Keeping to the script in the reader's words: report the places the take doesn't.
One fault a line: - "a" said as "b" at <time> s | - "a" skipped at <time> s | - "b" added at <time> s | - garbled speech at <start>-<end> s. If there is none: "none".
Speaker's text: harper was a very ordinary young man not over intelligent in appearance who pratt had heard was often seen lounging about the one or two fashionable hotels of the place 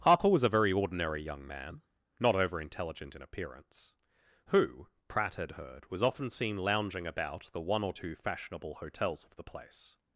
none